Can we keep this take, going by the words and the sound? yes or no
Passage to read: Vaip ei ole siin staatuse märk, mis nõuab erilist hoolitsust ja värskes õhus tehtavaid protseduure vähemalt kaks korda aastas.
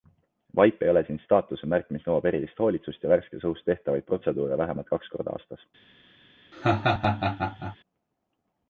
no